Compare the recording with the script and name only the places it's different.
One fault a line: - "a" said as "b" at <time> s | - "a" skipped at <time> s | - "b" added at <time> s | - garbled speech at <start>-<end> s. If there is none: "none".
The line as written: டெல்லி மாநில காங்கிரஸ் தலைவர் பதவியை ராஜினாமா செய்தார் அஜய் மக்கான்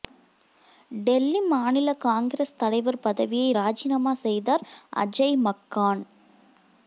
none